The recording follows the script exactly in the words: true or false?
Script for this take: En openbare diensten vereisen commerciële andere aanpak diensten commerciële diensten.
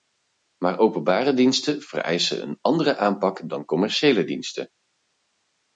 false